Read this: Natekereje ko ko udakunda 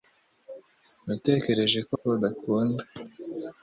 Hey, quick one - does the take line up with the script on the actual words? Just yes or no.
yes